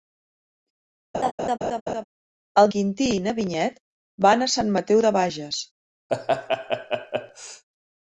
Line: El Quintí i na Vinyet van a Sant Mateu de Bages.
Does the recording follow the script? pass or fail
pass